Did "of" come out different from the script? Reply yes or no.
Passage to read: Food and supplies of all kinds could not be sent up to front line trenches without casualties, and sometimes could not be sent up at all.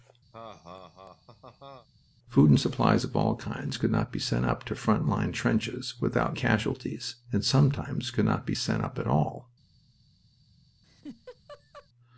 no